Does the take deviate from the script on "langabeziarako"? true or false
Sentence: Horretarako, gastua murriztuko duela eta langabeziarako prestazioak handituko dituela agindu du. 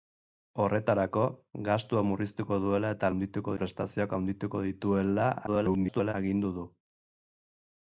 true